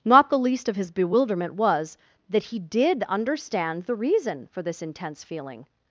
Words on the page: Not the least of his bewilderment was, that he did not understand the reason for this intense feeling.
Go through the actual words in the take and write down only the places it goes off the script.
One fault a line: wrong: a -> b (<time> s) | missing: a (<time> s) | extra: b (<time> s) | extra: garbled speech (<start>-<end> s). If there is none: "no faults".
missing: not (3.0 s)